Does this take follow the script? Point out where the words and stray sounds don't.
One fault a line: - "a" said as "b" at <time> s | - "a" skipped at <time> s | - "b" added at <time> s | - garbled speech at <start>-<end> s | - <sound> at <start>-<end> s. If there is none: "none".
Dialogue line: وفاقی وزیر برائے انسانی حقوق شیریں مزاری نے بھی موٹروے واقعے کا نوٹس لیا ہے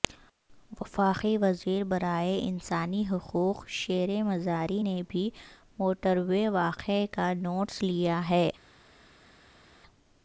none